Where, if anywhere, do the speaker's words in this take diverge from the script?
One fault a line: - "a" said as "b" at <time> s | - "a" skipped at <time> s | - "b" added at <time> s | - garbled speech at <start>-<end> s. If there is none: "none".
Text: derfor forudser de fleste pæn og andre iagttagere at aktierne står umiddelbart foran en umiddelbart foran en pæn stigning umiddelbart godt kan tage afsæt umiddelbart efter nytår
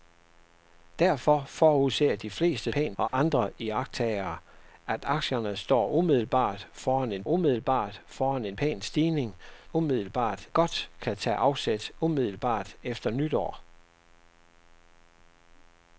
none